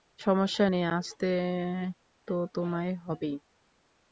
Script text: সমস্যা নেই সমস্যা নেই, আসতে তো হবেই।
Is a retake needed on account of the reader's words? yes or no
yes